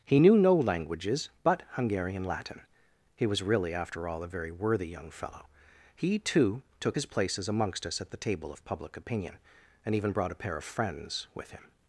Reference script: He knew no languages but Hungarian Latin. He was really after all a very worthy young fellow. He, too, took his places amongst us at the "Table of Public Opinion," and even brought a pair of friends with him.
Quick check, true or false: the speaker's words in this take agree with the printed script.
true